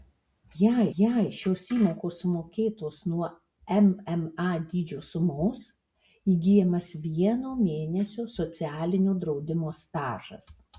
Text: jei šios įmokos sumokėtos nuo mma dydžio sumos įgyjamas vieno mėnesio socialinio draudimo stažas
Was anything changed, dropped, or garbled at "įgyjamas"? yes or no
no